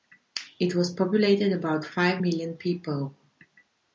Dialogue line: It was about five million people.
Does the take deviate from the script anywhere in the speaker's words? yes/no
yes